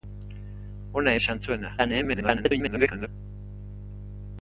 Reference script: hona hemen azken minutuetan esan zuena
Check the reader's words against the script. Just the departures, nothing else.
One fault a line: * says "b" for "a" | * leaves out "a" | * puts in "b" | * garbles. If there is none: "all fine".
* leaves out "hemen azken minutuetan"
* garbles